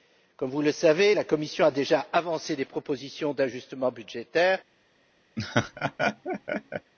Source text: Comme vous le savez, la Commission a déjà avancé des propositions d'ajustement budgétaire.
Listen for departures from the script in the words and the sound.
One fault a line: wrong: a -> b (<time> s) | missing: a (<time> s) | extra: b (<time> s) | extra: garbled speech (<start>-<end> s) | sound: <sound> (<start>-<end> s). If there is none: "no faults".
sound: laugh (5.4-6.9 s)